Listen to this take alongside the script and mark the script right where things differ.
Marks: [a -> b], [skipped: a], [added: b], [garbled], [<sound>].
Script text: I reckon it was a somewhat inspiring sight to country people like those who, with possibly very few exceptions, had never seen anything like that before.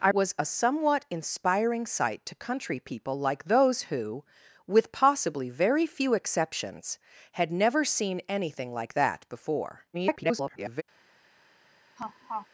I [skipped: reckon it] was a somewhat inspiring sight to country people like those who, with possibly very few exceptions, had never seen anything like that before. [garbled] [laugh]